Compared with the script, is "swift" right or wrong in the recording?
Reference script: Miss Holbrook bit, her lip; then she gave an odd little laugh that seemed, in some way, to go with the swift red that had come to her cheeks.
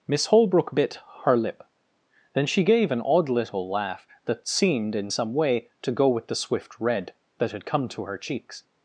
right